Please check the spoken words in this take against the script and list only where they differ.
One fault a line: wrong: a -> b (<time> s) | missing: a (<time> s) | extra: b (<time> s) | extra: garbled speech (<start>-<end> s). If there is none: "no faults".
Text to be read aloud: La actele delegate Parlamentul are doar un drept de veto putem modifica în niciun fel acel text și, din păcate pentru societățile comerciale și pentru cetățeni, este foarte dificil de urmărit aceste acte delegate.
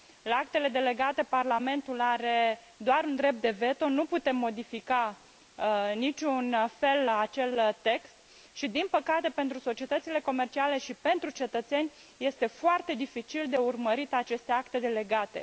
extra: nu (3.9 s)